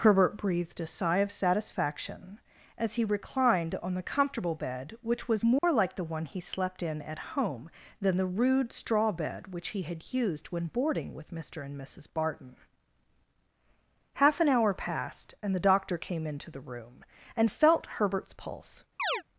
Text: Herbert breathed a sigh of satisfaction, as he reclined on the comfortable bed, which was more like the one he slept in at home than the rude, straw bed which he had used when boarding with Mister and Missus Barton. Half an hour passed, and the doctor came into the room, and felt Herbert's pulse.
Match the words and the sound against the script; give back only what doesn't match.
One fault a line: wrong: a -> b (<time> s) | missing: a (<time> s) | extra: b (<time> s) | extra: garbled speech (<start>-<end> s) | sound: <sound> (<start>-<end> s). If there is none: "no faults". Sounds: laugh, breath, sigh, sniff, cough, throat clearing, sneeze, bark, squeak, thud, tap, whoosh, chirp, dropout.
sound: dropout (5.6-5.6 s)
sound: chirp (19.0-19.2 s)